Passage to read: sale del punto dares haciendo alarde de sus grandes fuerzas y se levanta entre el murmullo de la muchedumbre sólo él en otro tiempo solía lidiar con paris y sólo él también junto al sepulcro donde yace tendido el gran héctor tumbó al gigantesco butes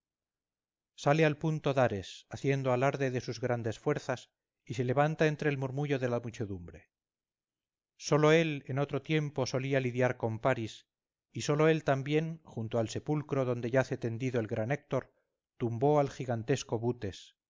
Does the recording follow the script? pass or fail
fail